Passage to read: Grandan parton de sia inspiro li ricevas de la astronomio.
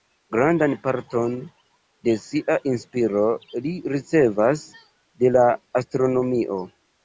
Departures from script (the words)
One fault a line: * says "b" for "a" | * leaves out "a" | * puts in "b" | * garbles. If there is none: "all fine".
all fine